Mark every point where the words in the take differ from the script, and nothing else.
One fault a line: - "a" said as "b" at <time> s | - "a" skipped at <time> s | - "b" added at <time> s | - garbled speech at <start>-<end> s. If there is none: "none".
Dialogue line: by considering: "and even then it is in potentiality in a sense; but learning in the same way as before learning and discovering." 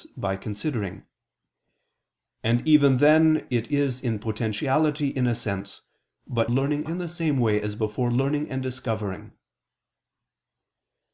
none